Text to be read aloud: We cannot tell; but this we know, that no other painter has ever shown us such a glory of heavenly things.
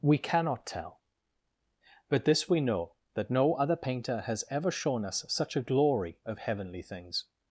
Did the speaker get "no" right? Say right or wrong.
right